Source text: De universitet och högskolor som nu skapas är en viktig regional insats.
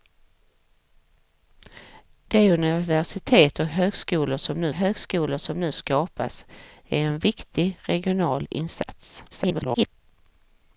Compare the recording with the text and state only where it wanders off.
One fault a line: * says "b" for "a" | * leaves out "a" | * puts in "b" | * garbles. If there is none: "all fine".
* puts in "högskolor som nu"
* garbles